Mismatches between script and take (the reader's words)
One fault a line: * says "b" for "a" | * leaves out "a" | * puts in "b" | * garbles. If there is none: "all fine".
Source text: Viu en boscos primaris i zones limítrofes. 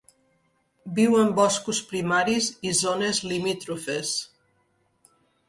all fine